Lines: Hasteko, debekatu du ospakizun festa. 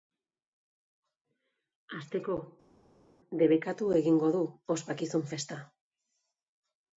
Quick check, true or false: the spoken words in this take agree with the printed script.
false